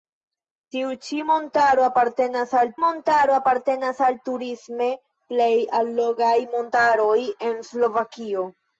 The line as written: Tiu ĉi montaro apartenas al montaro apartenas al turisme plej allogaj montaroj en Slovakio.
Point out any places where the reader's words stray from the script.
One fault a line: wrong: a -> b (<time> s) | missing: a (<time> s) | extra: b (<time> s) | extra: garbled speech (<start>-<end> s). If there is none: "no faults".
no faults